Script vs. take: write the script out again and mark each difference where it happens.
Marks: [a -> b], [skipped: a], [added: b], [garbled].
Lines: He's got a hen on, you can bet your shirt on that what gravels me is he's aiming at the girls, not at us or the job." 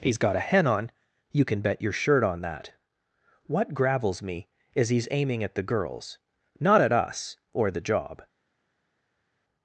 He's got a hen on, you can bet your shirt on that what gravels me is he's aiming at the girls, not at us or the job."